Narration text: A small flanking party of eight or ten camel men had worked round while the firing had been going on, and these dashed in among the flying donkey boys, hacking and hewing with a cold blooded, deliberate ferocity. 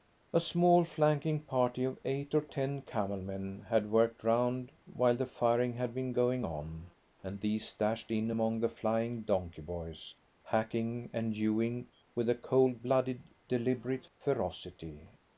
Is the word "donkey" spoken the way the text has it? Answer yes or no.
yes